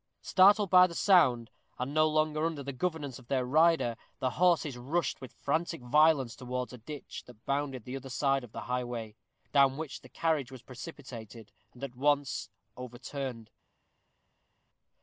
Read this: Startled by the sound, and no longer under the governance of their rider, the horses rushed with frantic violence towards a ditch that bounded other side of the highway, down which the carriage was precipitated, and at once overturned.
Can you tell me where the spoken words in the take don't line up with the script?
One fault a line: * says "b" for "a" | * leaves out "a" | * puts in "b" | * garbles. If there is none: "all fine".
* puts in "the"